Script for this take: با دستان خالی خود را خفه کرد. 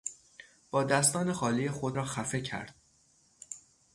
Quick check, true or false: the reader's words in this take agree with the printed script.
true